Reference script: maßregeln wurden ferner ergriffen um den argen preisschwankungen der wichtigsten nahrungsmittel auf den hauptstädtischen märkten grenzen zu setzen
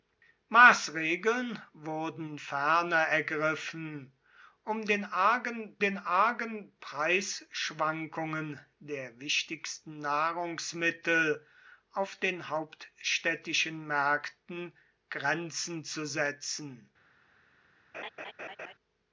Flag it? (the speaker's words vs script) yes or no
yes